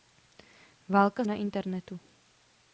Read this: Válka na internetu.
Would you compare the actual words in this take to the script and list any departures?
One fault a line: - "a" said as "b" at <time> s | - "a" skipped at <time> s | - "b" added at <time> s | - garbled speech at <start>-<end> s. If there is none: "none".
none